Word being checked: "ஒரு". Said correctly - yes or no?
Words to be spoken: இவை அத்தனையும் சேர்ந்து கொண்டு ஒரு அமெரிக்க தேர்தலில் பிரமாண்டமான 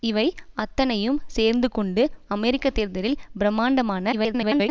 no